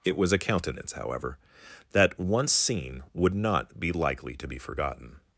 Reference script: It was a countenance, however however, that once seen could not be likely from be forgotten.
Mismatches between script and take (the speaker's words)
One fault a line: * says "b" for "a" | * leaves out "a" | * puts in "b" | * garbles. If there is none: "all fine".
* leaves out "however"
* says "would" for "could"
* says "to" for "from"